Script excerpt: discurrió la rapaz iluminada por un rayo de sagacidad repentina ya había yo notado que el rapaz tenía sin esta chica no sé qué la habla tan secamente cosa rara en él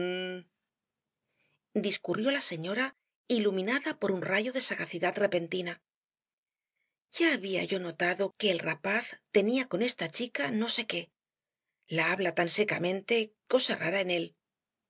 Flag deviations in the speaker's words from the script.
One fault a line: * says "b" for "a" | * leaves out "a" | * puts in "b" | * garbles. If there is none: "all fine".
* says "señora" for "rapaz"
* says "con" for "sin"